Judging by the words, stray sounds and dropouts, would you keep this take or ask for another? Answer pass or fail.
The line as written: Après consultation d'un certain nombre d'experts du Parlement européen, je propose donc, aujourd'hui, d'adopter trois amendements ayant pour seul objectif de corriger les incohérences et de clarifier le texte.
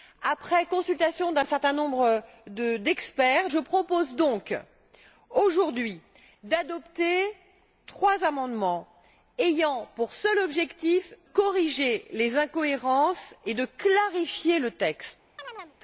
fail